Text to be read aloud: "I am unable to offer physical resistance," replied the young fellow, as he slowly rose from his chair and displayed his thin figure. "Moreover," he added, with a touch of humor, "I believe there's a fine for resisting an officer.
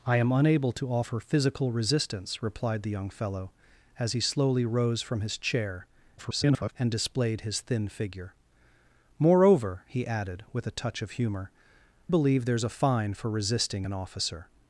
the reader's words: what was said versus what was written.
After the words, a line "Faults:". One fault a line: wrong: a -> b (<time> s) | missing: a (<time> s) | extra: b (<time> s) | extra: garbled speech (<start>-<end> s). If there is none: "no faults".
"I am unable to offer physical resistance," replied the young fellow, as he slowly rose from his chair [garbled] and displayed his thin figure. "Moreover," he added, with a touch of humor, "believe there's a fine for resisting an officer.
Faults:
extra: garbled speech (6.2-6.7 s)
missing: I (11.5 s)